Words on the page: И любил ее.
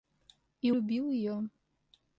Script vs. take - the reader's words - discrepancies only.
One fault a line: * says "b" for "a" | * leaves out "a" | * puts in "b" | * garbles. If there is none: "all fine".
all fine